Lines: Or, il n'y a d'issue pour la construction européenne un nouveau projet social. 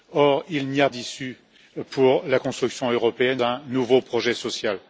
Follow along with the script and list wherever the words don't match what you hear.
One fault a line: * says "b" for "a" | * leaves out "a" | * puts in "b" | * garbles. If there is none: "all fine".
all fine